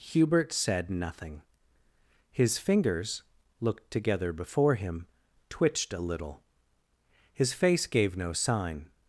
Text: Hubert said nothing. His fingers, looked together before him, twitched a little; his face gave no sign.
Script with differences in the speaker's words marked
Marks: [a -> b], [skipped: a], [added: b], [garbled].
Hubert said nothing. His fingers, looked together before him, twitched a little; his face gave no sign.